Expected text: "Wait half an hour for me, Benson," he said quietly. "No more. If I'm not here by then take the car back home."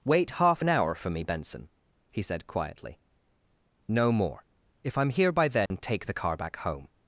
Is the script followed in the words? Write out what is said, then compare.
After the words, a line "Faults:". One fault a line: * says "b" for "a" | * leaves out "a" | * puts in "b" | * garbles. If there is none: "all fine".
"Wait half an hour for me, Benson," he said quietly. "No more. If I'm here by then take the car back home."
Faults:
* leaves out "not"